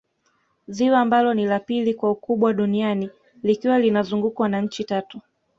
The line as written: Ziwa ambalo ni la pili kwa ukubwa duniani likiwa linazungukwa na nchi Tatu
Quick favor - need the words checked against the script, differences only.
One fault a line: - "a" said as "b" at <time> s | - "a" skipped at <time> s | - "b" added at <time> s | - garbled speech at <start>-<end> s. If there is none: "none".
none